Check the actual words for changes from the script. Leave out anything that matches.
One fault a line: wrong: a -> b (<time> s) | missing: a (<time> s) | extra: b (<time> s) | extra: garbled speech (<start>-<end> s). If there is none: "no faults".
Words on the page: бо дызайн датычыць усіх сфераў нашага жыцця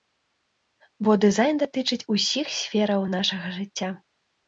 no faults